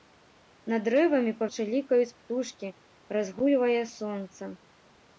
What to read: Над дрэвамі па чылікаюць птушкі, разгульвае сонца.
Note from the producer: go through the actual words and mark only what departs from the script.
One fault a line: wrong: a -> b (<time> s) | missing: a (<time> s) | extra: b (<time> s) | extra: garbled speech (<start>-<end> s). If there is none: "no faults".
no faults